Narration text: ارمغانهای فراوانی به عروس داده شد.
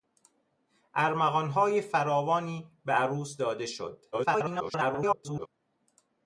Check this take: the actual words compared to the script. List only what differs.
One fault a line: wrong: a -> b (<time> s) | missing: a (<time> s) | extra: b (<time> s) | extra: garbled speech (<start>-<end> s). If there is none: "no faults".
extra: garbled speech (4.1-5.5 s)